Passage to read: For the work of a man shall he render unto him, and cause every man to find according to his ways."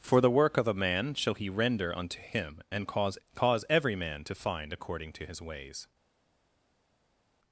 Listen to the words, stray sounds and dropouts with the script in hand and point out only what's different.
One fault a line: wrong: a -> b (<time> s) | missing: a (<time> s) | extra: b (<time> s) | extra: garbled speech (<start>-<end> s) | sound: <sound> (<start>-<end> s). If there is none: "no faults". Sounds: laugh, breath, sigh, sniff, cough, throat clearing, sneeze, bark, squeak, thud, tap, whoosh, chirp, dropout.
extra: cause (3.3 s)